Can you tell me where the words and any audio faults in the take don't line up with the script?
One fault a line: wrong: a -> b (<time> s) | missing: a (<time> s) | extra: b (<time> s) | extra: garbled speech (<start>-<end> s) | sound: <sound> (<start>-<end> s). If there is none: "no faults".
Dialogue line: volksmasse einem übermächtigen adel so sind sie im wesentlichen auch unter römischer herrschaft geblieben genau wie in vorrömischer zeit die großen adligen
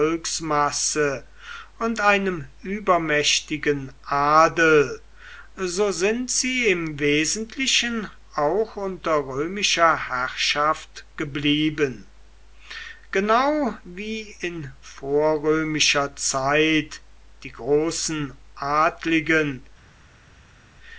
extra: und (1.8 s)